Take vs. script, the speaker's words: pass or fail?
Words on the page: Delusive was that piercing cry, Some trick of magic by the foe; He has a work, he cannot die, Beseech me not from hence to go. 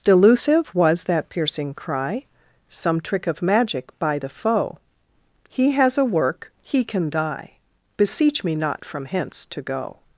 fail